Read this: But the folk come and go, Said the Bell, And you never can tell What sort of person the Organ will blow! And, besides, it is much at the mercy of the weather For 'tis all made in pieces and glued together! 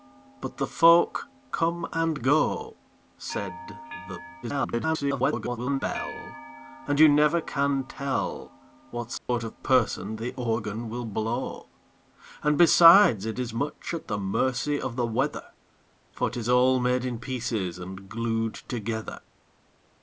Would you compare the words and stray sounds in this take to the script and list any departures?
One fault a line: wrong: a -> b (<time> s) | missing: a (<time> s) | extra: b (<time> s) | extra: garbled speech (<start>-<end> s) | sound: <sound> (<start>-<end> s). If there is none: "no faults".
extra: garbled speech (4.4-5.8 s)
sound: dropout (9.2-9.3 s)